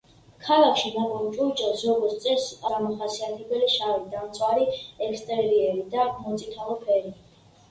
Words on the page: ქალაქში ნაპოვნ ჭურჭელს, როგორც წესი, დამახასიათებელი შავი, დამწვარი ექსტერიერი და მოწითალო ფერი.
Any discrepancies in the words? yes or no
no